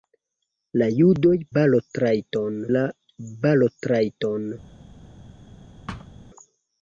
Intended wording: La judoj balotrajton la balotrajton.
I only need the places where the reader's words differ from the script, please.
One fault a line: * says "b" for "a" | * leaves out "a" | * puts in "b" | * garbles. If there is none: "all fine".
all fine